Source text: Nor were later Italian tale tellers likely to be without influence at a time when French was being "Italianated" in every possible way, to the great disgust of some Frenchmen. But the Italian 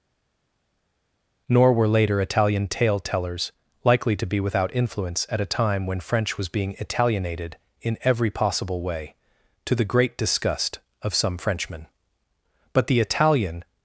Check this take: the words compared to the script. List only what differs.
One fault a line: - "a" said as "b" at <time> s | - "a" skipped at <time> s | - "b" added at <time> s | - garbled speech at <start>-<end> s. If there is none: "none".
none